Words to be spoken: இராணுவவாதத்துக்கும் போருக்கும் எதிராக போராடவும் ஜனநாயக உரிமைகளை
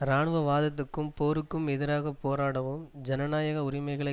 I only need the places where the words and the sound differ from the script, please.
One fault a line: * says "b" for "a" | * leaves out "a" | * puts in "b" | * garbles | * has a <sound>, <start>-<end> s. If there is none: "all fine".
all fine